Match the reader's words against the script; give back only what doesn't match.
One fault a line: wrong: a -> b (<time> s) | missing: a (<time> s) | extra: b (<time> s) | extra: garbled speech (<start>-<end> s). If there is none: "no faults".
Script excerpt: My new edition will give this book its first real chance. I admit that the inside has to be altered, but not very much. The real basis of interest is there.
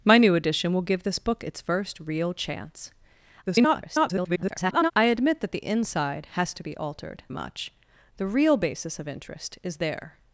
extra: garbled speech (3.5-4.9 s)
missing: but not very (7.2 s)